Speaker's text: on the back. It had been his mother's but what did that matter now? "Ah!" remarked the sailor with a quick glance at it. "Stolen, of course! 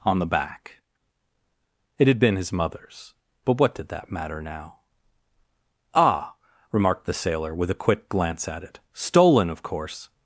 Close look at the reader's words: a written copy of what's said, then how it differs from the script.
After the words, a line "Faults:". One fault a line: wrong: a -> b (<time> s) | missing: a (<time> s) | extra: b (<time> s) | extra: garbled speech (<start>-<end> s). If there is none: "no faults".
on the back. It had been his mother's but what did that matter now? "Ah!" remarked the sailor with a quick glance at it. "Stolen, of course!
Faults:
no faults